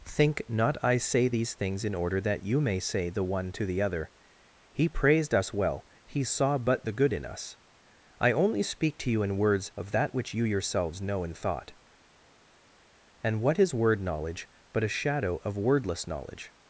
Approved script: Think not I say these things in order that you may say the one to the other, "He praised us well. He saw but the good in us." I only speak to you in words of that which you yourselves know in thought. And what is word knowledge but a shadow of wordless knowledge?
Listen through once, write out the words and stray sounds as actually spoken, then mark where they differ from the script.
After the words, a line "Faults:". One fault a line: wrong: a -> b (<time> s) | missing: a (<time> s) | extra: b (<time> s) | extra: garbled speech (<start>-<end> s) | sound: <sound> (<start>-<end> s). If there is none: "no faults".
Think not I say these things in order that you may say the one to the other, "He praised us well. He saw but the good in us." I only speak to you in words of that which you yourselves know in thought. And what is word knowledge but a shadow of wordless knowledge?
Faults:
no faults